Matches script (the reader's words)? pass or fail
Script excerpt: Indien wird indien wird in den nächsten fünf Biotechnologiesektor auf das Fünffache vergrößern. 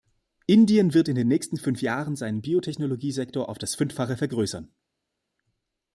fail